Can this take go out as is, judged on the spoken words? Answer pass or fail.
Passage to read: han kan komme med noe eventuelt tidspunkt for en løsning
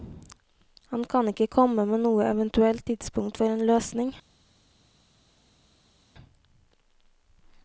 fail